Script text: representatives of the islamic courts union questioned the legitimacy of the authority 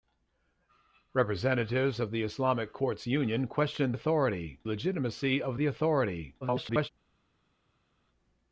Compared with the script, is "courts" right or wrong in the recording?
right